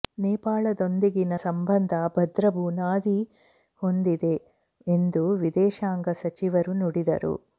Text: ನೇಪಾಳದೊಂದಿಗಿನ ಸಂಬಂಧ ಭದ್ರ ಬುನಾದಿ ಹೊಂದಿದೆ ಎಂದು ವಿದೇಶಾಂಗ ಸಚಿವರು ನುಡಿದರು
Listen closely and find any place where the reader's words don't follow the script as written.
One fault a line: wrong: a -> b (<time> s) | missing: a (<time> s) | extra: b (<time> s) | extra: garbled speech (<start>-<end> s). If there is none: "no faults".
no faults